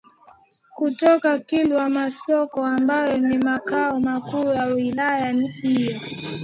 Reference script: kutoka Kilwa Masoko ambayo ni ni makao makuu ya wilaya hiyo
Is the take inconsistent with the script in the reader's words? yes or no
yes